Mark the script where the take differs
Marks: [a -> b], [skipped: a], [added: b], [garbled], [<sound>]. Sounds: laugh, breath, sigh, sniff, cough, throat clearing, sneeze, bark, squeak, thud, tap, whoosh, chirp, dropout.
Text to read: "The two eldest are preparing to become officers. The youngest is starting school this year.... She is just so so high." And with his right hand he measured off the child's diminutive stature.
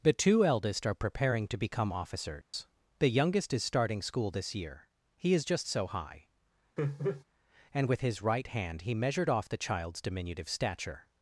"The two eldest are preparing to become officers. [dropout] The youngest is starting school this year.... [She -> He] is just so [skipped: so] high." [laugh] And with his right hand he measured off the child's diminutive stature.